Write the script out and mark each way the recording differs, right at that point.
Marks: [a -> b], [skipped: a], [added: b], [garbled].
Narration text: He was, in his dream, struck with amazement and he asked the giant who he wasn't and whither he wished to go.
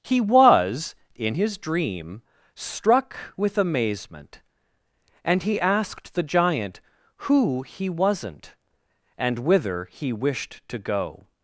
He was, in his dream, struck with amazement and he asked the giant who he wasn't and whither he wished to go.